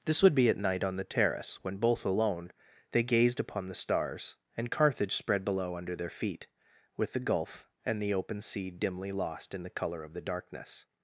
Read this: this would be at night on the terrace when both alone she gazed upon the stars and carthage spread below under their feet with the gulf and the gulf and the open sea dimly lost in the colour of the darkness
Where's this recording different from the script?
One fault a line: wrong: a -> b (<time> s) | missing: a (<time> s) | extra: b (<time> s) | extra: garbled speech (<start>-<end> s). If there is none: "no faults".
wrong: she -> they (2.9 s)
missing: gulf and the (8.1 s)